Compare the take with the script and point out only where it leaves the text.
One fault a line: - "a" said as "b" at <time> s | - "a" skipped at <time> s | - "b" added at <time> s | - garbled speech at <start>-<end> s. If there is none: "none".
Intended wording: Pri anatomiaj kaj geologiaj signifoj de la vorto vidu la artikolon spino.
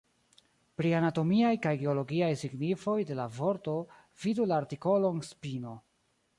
none